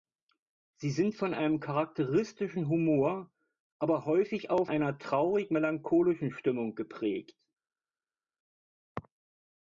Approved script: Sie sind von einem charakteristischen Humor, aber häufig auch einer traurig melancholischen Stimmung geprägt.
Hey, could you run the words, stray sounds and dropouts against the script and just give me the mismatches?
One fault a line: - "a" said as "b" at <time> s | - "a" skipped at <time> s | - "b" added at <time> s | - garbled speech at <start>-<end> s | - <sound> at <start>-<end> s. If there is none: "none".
none